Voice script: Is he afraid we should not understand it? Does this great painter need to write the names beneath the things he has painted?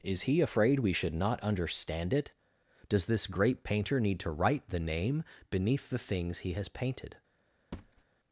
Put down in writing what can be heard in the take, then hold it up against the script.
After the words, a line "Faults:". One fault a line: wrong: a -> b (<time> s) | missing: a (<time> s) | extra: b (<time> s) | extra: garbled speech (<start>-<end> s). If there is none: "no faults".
Is he afraid we should not understand it? Does this great painter need to write the name beneath the things he has painted?
Faults:
wrong: names -> name (4.8 s)